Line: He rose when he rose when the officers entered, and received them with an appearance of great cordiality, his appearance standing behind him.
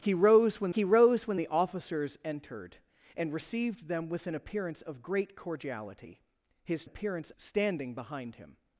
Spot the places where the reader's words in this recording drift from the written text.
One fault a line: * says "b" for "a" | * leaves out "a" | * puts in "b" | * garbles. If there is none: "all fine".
all fine